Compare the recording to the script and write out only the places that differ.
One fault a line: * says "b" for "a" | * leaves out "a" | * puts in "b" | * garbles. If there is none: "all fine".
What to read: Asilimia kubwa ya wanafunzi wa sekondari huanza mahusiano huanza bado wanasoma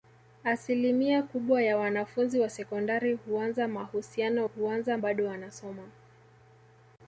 all fine